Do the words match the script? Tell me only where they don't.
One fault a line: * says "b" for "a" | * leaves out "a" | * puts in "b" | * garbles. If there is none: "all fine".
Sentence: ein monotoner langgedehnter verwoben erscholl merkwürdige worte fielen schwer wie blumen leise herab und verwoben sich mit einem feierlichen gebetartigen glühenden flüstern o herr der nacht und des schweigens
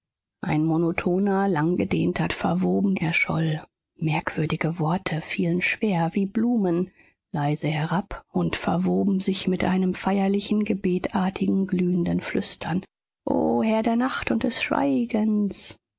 all fine